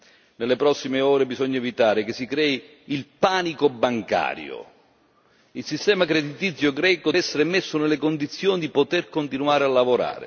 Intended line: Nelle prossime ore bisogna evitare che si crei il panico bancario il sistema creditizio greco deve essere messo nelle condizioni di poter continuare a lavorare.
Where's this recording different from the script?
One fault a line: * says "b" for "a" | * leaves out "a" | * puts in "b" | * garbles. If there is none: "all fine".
* leaves out "deve"